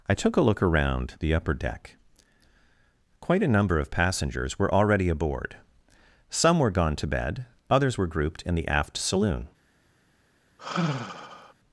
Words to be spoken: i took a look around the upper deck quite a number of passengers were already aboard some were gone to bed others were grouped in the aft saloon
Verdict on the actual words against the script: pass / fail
pass